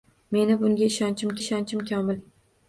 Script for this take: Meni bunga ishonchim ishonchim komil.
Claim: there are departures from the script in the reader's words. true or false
false